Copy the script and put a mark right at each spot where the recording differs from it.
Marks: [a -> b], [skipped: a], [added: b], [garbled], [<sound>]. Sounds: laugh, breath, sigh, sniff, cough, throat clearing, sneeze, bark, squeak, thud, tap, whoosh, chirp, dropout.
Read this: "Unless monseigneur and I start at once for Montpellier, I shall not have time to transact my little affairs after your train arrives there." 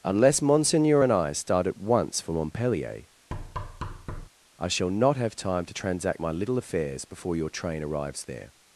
"Unless monseigneur and I start at once for Montpellier, [thud] I shall not have time to transact my little affairs [after -> before] your train arrives there."